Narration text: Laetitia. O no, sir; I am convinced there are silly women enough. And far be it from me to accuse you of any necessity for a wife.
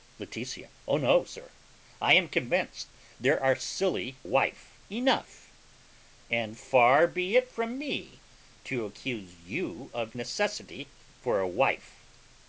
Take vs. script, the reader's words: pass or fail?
fail